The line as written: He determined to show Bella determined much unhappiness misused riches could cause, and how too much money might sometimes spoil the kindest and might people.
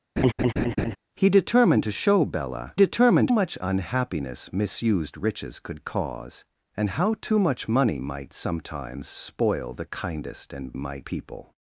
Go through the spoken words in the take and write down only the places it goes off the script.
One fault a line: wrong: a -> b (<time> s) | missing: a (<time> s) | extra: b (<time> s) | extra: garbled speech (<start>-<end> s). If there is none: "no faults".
no faults